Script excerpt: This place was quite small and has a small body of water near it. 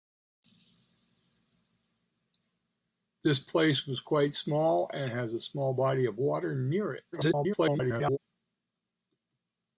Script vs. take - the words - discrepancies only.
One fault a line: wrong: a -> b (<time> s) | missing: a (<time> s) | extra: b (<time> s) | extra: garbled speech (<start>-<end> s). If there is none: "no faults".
extra: garbled speech (7.1-8.2 s)